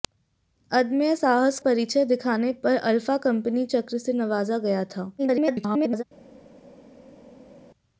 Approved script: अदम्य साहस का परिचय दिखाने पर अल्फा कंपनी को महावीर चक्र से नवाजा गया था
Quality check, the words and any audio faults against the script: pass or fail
fail